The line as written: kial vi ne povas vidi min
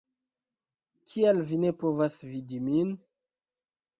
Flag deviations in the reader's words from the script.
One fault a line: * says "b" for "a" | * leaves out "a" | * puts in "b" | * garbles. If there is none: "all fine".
all fine